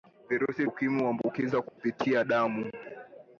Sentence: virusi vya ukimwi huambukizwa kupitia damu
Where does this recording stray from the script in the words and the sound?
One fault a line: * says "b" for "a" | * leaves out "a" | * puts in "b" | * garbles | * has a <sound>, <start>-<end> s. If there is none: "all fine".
* leaves out "vya"
* has a dropout, 1.7-1.8 s